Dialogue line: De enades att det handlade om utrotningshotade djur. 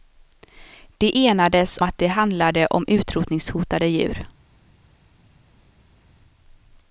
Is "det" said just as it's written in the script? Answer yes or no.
yes